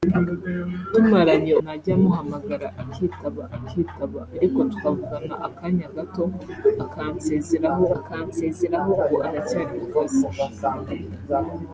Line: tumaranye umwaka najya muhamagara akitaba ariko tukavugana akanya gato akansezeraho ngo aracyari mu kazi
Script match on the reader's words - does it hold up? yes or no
no